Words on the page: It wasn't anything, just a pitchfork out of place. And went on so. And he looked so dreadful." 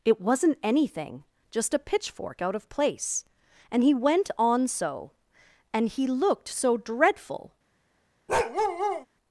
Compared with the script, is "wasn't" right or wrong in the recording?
right